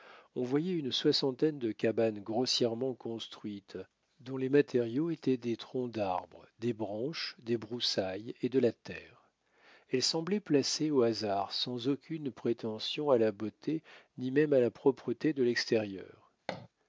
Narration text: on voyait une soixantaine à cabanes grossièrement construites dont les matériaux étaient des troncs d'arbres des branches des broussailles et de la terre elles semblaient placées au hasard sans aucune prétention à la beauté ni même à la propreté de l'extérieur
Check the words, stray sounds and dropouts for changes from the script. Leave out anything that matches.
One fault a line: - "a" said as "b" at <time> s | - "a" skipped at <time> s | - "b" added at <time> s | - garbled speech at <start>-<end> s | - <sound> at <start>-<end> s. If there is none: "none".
- "à" said as "de" at 1.6 s
- thud at 16.5-16.7 s